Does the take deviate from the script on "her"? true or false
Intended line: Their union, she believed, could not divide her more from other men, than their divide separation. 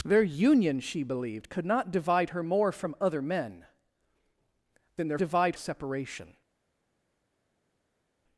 false